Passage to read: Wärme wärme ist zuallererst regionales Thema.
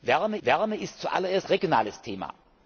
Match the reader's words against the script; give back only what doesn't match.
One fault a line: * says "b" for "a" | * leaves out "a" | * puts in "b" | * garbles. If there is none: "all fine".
all fine